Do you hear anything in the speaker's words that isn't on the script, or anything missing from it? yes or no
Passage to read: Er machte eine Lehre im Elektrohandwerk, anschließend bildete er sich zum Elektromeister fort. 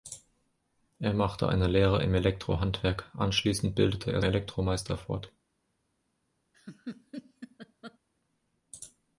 yes